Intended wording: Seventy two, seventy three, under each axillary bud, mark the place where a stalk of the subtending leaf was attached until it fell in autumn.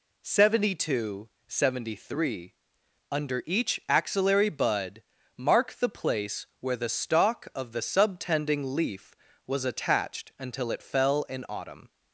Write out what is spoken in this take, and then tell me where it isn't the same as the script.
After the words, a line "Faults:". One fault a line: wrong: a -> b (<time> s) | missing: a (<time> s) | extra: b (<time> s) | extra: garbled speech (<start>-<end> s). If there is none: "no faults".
Seventy two, seventy three, under each axillary bud, mark the place where the stalk of the subtending leaf was attached until it fell in autumn.
Faults:
wrong: a -> the (6.8 s)